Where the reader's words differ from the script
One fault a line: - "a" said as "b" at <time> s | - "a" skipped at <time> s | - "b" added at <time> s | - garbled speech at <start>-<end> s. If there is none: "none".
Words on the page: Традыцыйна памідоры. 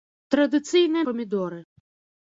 none